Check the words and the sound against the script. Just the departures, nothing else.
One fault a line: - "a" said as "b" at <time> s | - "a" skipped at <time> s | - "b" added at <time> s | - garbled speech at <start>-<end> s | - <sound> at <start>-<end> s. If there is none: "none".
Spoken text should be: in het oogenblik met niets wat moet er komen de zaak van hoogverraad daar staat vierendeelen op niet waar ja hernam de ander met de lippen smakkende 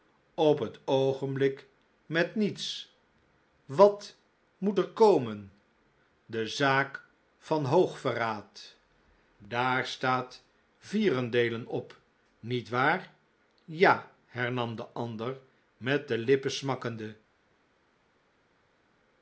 - "in" said as "op" at 0.3 s